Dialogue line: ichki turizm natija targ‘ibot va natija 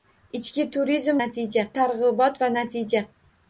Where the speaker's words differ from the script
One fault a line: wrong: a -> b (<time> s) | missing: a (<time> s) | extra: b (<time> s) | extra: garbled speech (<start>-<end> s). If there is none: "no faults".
no faults